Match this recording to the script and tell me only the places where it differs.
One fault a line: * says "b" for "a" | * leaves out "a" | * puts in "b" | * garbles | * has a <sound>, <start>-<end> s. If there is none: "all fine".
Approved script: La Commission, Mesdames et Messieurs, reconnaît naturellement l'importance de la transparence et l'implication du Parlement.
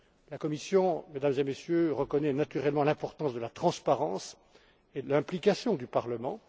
all fine